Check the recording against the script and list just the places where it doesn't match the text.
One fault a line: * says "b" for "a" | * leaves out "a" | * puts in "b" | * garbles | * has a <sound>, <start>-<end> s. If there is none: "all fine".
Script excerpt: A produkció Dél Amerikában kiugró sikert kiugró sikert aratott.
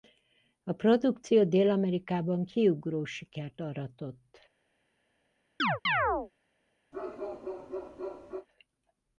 * leaves out "kiugró sikert"
* has a chirp, 5.6-6.3 s
* has a bark, 6.9-8.5 s